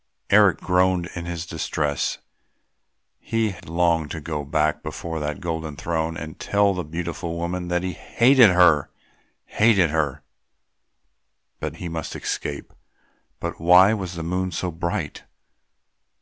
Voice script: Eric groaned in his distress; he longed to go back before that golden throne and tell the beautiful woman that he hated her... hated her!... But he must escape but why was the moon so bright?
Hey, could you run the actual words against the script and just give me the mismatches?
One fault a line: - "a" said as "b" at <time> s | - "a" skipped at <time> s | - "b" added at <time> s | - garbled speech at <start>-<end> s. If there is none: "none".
none